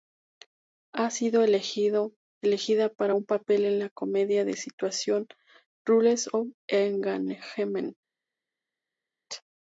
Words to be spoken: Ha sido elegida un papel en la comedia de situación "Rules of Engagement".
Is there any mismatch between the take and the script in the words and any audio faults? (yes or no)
yes